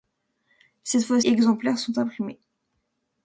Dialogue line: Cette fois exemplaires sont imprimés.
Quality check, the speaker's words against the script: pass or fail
pass